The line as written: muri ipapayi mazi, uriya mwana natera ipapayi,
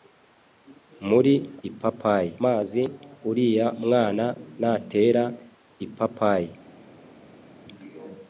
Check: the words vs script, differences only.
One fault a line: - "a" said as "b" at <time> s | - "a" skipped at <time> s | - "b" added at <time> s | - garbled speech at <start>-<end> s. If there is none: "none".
none